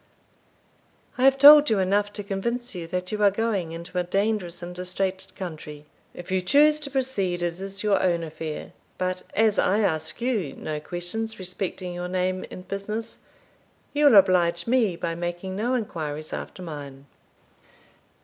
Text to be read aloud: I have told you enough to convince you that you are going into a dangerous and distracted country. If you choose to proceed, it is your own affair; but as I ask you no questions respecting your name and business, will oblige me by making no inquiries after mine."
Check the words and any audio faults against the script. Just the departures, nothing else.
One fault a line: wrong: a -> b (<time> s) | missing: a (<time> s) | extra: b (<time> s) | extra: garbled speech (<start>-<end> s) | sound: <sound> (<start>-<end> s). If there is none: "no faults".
extra: you (13.9 s)